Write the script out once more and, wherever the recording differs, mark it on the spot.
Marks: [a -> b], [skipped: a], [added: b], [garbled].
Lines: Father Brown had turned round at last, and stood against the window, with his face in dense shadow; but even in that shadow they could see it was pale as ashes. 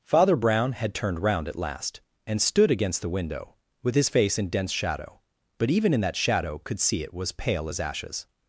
Father Brown had turned round at last, and stood against the window, with his face in dense shadow; but even in that shadow [skipped: they] could see it was pale as ashes.